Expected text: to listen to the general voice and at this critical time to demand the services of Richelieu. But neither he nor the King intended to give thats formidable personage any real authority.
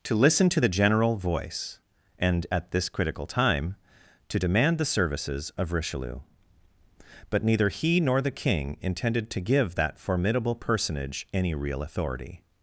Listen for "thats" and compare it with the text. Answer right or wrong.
wrong